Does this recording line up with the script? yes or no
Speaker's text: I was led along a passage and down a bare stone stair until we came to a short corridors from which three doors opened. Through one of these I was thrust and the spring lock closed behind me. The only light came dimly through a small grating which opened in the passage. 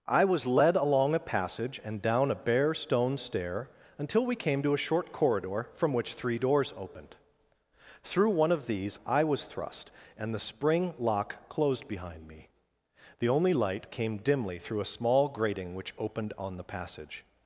no